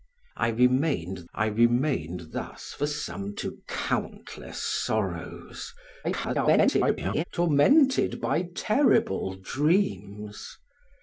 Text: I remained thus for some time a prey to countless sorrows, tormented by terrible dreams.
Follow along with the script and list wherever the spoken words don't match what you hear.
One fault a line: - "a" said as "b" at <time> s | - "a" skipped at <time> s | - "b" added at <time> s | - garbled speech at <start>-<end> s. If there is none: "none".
- "I remained" added at 1.3 s
- "time a prey" skipped at 3.4 s
- garbled speech at 6.0-7.2 s